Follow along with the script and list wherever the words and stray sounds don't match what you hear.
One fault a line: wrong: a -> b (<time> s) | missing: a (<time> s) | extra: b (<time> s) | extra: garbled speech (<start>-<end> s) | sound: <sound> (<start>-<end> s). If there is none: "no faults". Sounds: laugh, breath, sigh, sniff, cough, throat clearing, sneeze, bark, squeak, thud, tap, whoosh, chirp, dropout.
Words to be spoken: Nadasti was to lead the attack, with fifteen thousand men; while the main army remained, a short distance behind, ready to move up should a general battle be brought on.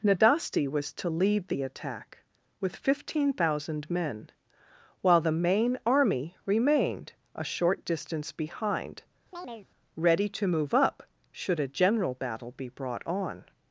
sound: chirp (9.3-9.7 s)